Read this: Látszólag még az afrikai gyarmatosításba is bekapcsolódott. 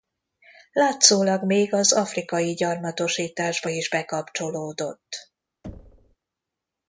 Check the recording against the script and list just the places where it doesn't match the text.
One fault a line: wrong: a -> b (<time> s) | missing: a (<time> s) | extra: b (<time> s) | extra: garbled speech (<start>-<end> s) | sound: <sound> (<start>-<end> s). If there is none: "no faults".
sound: thud (5.6-6.2 s)